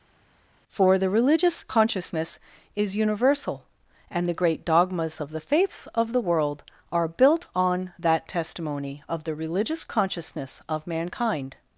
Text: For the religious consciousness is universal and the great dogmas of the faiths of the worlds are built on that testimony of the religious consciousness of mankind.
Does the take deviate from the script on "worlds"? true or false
true